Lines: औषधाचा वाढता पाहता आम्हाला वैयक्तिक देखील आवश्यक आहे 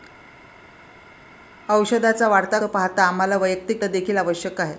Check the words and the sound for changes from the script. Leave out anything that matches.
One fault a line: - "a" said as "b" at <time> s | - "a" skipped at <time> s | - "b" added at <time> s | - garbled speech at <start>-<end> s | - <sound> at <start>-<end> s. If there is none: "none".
none